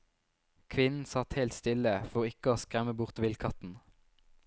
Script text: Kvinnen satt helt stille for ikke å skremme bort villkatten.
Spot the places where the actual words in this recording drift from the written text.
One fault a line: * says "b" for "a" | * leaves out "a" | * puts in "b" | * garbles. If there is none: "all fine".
all fine